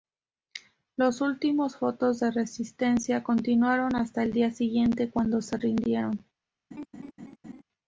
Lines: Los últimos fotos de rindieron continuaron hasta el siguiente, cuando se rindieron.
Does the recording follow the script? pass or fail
fail